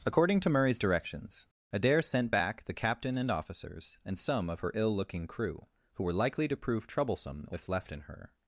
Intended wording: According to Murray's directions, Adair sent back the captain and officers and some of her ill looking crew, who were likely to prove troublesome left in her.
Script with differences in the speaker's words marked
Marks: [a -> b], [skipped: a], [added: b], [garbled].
According to Murray's directions, Adair sent back the captain and officers and some of her ill looking crew, who were likely to prove troublesome [added: if] left in her.